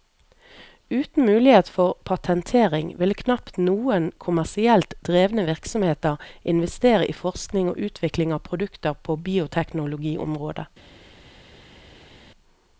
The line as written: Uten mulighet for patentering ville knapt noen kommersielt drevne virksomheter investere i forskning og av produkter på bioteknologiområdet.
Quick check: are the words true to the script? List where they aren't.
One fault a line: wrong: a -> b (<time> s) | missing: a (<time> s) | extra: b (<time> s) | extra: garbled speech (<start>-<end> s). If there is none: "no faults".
extra: utvikling (7.9 s)